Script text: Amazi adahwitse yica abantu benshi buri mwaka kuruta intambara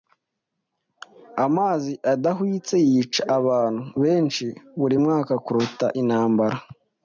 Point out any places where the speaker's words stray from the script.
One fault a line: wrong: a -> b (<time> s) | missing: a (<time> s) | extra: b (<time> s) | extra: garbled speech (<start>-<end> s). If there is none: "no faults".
no faults